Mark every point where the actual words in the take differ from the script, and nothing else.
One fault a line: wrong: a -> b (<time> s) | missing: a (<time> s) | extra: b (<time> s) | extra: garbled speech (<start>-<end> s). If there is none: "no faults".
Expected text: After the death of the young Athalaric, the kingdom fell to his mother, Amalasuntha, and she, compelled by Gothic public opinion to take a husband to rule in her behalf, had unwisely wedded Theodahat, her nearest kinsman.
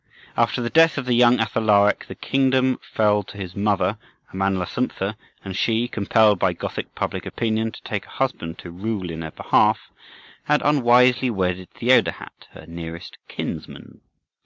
no faults